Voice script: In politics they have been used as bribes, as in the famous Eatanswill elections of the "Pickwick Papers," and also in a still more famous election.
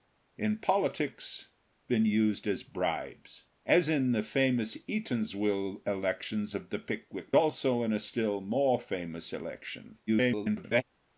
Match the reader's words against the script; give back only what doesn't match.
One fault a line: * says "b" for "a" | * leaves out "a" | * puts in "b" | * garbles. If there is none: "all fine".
* leaves out "they have"
* leaves out "Papers and"
* garbles